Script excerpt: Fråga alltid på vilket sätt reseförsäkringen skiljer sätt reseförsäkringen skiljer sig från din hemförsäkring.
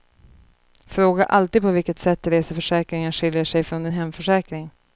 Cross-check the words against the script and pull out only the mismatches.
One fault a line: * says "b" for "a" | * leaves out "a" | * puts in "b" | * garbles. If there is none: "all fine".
* leaves out "sätt reseförsäkringen skiljer"